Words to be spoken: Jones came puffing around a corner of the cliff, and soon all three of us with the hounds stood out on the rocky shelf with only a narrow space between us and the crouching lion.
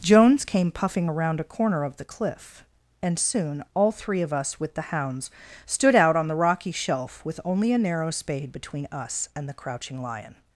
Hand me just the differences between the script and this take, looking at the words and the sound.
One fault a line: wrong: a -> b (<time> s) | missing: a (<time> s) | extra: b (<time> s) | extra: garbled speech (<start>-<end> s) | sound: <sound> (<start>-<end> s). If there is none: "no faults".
wrong: space -> spade (8.1 s)